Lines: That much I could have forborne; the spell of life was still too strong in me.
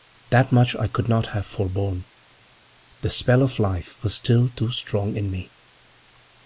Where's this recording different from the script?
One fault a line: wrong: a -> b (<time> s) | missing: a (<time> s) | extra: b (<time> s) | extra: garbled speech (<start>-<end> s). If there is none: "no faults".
extra: not (1.1 s)